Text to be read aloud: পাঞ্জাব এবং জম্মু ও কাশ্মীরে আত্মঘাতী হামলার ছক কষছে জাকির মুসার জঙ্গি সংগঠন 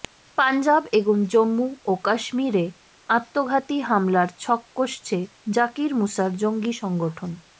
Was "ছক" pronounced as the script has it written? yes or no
yes